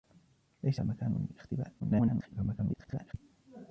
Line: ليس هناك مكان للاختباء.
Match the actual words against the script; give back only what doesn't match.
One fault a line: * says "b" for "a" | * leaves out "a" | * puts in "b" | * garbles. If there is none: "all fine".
* leaves out "هناك"
* garbles